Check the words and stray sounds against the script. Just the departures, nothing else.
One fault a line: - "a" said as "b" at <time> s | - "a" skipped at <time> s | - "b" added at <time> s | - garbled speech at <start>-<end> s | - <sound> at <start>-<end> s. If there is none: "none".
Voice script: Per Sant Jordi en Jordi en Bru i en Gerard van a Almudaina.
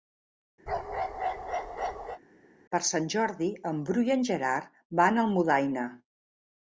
- bark at 0.7-2.2 s
- "Jordi en" skipped at 3.8 s